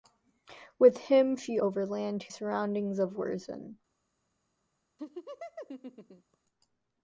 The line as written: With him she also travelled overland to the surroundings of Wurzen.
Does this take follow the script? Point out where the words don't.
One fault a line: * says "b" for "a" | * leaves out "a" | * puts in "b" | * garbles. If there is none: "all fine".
* leaves out "also travelled"
* leaves out "the"